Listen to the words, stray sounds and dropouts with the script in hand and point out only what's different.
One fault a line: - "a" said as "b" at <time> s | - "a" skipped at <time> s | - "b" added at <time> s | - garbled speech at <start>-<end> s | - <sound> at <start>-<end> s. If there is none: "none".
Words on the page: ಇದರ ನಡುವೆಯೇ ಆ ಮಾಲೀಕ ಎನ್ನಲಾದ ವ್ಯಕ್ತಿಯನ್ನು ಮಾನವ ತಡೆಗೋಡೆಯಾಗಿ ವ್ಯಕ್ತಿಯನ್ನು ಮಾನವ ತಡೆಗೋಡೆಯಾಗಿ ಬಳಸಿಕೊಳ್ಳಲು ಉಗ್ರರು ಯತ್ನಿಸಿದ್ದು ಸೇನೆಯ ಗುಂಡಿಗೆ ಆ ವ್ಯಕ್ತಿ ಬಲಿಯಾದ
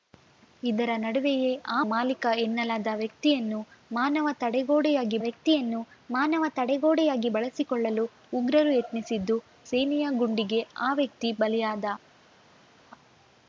none